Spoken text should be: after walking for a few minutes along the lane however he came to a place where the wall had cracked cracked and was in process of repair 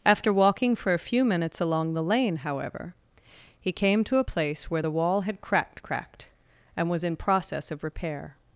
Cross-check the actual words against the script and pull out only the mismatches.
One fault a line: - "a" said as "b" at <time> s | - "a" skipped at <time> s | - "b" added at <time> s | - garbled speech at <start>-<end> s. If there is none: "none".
none